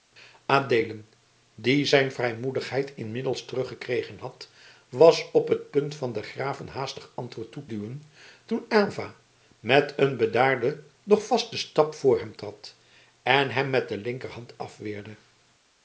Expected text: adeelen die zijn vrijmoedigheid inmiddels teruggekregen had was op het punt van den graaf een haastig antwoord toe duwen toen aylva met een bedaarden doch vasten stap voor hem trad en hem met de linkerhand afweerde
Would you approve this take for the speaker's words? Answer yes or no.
yes